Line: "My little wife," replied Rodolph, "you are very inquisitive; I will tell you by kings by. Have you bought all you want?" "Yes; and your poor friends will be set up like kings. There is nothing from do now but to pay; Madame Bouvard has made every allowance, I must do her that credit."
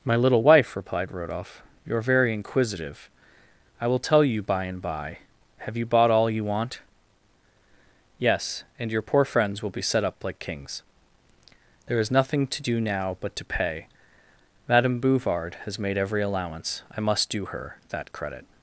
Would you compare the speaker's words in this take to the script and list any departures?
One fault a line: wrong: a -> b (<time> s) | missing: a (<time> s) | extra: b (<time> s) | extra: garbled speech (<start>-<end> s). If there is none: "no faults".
wrong: kings -> and (4.6 s)
wrong: from -> to (12.5 s)